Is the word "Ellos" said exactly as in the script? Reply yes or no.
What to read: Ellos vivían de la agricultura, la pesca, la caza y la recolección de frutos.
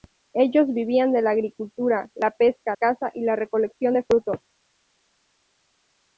yes